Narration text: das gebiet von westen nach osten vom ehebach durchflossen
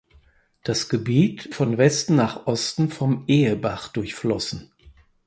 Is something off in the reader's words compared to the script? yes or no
no